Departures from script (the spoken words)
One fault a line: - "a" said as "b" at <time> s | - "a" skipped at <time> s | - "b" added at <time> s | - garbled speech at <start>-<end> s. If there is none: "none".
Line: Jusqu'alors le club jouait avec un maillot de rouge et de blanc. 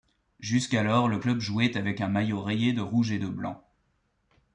- "rayé" added at 2.4 s